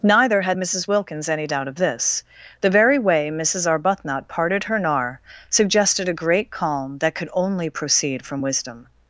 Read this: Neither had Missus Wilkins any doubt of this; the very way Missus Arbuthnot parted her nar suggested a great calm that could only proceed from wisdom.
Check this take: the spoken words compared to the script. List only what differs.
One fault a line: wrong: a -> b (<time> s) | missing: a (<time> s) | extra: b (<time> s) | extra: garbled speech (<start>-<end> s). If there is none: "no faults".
no faults